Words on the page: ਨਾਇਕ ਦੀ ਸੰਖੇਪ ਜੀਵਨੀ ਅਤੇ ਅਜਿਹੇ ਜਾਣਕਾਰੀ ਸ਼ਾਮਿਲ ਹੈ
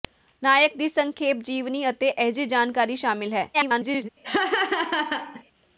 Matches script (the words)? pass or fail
fail